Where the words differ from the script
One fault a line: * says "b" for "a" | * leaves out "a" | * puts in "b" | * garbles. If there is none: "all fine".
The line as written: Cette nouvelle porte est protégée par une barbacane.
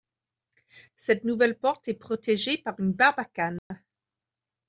all fine